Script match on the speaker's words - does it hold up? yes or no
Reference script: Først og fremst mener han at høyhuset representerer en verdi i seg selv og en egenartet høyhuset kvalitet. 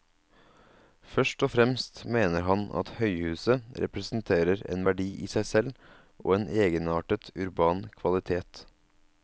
no